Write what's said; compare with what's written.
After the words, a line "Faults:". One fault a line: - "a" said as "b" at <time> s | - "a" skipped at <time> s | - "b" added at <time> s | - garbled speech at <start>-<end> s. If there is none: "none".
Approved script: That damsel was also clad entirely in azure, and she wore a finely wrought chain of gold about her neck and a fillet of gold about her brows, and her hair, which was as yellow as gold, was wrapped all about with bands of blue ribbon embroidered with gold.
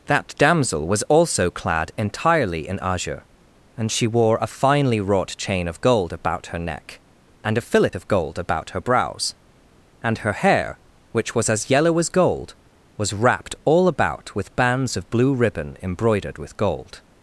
That damsel was also clad entirely in azure, and she wore a finely wrought chain of gold about her neck and a fillet of gold about her brows, and her hair, which was as yellow as gold, was wrapped all about with bands of blue ribbon embroidered with gold.
Faults:
none